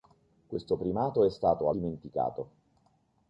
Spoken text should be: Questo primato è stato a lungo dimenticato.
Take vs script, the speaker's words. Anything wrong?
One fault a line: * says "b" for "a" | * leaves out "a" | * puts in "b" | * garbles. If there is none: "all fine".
* leaves out "lungo"